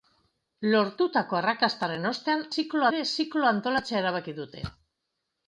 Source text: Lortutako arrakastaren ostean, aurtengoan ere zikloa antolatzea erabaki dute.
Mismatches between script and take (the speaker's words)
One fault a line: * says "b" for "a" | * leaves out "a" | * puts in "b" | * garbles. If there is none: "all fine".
* says "zikloa" for "aurtengoan"